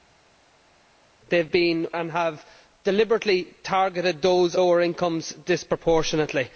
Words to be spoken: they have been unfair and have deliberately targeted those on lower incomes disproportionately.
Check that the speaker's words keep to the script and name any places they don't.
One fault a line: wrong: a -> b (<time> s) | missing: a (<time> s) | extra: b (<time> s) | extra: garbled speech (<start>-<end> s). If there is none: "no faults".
missing: unfair (1.9 s)
missing: on (4.6 s)